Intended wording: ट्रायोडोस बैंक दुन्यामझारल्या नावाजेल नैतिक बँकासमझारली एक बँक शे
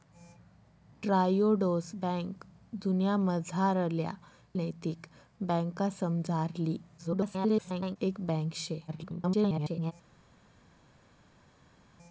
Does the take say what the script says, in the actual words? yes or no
no